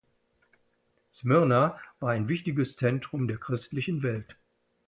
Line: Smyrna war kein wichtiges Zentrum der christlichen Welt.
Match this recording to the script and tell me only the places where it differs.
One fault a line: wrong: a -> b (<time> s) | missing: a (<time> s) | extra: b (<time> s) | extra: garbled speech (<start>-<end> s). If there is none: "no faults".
wrong: kein -> ein (2.1 s)